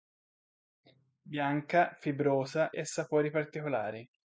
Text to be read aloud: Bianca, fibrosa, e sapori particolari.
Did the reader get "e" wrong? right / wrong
right